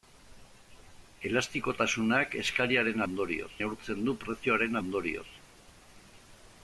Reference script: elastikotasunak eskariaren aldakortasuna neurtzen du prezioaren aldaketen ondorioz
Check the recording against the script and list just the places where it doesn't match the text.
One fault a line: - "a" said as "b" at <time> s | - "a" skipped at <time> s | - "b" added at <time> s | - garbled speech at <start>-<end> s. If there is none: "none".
- "aldakortasuna" said as "ondorioz" at 3.1 s
- "aldaketen" skipped at 4.8 s